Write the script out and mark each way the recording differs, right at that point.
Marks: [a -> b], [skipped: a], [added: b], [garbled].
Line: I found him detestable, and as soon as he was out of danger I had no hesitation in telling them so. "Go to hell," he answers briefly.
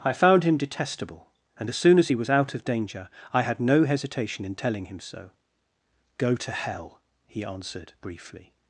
I found him detestable, and as soon as he was out of danger I had no hesitation in telling [them -> him] so. "Go to hell," he [answers -> answered] briefly.